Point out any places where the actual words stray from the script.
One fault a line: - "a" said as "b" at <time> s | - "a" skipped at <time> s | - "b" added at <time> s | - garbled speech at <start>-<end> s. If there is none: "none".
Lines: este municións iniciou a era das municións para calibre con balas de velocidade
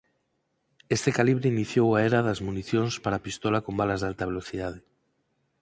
- "municións" said as "calibre" at 1.2 s
- "calibre" said as "pistola" at 3.3 s
- "alta" added at 4.1 s